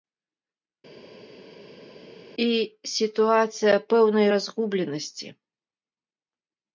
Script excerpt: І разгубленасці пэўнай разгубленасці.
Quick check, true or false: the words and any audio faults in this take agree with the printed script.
false